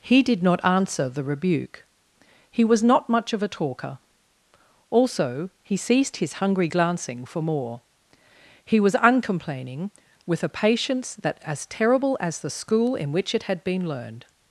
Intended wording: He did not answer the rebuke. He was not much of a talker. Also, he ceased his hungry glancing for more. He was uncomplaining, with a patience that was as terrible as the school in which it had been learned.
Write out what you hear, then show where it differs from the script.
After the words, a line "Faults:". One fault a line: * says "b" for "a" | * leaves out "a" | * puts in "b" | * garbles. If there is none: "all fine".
He did not answer the rebuke. He was not much of a talker. Also, he ceased his hungry glancing for more. He was uncomplaining, with a patience that as terrible as the school in which it had been learned.
Faults:
* leaves out "was"